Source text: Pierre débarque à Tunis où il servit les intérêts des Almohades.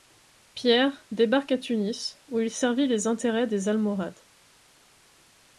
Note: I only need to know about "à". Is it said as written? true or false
true